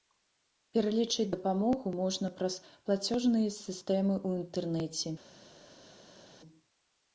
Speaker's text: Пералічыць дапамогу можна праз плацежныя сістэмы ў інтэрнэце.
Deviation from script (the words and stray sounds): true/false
false